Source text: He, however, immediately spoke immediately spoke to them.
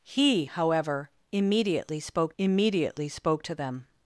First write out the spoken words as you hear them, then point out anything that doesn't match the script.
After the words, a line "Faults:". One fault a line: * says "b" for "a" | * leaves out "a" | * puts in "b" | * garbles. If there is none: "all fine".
He, however, immediately spoke immediately spoke to them.
Faults:
all fine